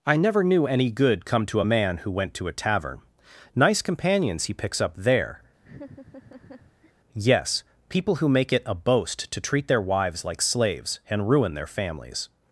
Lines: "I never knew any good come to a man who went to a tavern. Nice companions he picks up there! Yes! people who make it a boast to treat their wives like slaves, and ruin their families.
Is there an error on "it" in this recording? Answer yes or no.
no